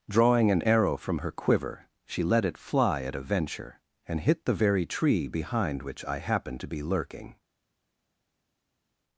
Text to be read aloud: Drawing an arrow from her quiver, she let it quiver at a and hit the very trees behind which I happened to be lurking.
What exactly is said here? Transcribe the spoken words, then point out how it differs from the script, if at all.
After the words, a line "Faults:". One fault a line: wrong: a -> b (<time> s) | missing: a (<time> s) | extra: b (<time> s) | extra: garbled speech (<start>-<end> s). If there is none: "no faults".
Drawing an arrow from her quiver, she let it fly at a venture, and hit the very tree behind which I happened to be lurking.
Faults:
wrong: quiver -> fly (2.6 s)
extra: venture (3.2 s)
wrong: trees -> tree (4.8 s)